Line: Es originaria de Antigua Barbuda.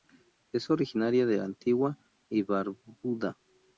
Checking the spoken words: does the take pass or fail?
fail